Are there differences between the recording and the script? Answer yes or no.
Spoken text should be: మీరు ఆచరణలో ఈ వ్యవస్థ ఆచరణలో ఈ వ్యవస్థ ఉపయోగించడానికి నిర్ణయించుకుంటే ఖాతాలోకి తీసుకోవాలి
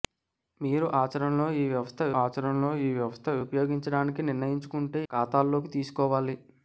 no